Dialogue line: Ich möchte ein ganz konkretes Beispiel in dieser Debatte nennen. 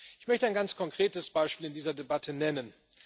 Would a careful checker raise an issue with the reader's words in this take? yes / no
no